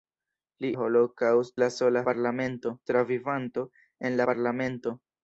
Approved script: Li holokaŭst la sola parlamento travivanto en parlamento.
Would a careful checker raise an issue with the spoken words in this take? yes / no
no